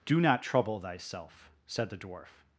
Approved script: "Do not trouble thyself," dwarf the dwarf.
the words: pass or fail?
fail